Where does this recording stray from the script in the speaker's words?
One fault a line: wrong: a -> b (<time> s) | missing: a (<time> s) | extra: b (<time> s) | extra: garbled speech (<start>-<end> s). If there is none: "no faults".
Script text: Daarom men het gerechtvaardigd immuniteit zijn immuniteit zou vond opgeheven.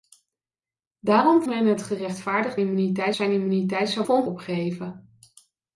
no faults